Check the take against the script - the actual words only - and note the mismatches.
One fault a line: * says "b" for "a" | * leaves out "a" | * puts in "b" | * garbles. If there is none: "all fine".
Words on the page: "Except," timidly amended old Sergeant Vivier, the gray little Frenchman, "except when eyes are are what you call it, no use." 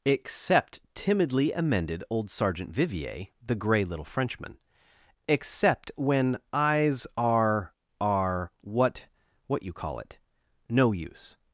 * puts in "what"